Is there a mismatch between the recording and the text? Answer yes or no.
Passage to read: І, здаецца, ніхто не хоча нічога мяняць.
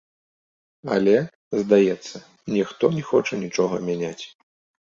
yes